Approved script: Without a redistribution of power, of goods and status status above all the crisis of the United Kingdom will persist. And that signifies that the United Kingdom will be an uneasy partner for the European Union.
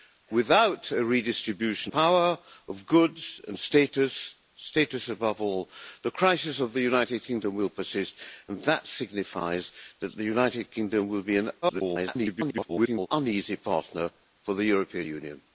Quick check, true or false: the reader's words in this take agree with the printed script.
false